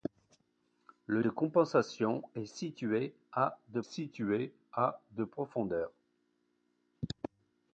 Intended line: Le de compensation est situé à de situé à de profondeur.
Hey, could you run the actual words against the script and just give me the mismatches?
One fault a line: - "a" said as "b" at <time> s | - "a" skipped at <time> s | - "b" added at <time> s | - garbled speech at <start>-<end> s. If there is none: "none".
none